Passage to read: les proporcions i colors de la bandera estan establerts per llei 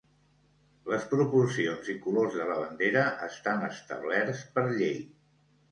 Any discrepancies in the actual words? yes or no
no